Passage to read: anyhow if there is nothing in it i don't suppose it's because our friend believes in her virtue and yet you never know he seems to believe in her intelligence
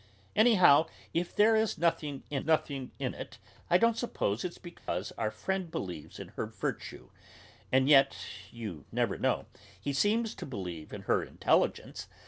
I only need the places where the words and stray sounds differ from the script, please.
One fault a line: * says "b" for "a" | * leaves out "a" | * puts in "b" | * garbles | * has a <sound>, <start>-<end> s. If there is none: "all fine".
* puts in "nothing in"
* has a dropout, 4.8-4.9 s